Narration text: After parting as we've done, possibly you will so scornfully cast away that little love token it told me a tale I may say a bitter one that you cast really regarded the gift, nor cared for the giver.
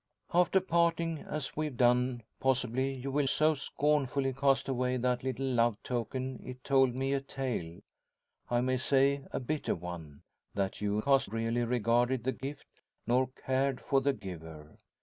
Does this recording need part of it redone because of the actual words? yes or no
no